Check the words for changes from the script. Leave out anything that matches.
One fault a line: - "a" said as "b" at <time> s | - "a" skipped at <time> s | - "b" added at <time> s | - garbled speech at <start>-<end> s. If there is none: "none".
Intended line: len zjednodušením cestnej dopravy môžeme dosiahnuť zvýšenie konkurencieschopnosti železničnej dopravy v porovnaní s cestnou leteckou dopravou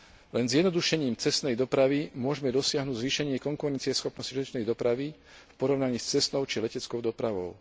- "či" added at 6.4 s